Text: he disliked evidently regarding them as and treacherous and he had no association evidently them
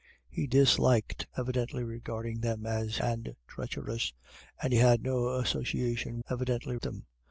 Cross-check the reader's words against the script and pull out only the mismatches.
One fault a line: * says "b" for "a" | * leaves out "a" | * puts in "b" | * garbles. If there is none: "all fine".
all fine